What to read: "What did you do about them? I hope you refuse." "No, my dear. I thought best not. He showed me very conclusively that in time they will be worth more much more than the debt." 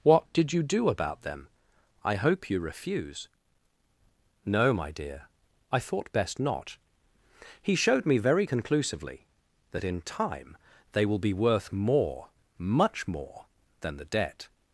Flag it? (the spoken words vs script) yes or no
no